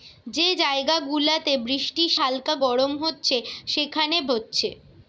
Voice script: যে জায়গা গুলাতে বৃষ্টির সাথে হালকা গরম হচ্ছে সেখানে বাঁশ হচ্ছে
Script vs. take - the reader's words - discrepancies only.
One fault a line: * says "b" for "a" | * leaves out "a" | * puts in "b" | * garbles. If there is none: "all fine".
* leaves out "সাথে"
* leaves out "বাঁশ"